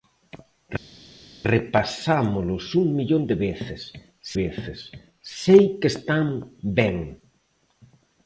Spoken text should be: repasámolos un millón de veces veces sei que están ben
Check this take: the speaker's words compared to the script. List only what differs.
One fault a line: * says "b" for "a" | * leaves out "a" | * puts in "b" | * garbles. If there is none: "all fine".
all fine